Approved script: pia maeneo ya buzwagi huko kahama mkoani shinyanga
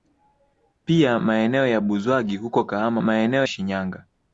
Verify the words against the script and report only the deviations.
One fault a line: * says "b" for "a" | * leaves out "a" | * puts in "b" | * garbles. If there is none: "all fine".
* says "maeneo" for "mkoani"